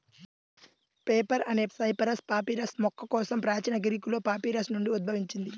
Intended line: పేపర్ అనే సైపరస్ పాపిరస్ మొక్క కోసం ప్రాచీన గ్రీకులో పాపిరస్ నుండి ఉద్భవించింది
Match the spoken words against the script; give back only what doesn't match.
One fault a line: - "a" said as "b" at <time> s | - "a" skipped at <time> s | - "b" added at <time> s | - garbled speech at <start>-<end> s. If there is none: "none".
none